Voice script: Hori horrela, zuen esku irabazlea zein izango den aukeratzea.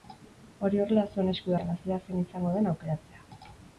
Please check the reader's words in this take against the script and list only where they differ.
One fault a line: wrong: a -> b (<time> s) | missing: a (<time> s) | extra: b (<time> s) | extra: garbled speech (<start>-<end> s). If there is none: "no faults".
no faults